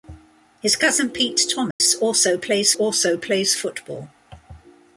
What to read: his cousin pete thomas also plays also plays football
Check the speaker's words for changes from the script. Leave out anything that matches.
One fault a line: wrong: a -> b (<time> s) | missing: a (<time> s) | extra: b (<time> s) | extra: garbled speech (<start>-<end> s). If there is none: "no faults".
no faults